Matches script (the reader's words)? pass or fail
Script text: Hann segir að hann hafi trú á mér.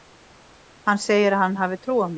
pass